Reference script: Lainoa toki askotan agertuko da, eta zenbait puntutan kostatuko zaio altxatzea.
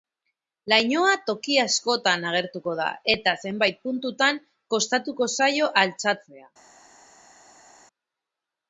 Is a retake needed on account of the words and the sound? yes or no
no